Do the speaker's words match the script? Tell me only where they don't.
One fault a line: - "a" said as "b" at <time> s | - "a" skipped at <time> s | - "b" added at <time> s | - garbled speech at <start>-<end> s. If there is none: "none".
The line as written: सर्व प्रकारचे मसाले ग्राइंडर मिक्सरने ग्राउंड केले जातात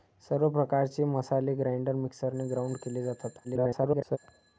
- garbled speech at 3.4-4.2 s